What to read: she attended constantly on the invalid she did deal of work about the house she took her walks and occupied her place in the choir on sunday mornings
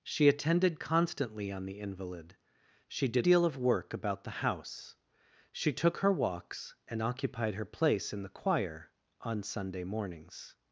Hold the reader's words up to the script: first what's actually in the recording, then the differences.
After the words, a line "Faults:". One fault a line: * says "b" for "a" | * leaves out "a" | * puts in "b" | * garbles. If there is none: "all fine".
she attended constantly on the invalid she did deal of work about the house she took her walks and occupied her place in the choir on sunday mornings
Faults:
all fine